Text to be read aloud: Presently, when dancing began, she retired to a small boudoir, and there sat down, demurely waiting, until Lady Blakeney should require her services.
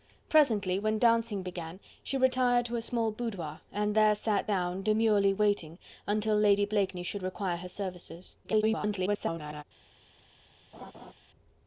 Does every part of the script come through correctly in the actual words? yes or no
no